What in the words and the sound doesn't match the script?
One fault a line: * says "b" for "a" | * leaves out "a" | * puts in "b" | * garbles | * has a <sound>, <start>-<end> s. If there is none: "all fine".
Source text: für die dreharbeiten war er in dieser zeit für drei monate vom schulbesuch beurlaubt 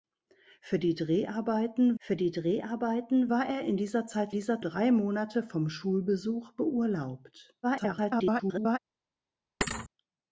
* puts in "für die dreharbeiten"
* says "dieser" for "für"
* garbles
* has a thud, 9.6-9.9 s